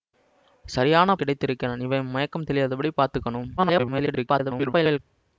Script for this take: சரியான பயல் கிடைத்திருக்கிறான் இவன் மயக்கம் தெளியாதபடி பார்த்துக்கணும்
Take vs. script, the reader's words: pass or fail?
fail